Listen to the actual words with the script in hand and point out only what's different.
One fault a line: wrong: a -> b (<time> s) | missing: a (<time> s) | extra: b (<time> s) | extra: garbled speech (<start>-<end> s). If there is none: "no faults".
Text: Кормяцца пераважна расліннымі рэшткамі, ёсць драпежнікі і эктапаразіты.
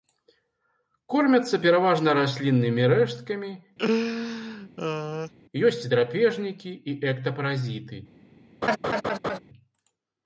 no faults